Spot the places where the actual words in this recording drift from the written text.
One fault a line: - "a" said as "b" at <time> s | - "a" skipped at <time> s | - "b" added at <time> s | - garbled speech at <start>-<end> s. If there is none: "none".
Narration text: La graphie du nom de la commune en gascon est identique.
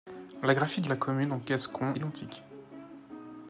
- "nom" skipped at 0.9 s
- "est" skipped at 1.9 s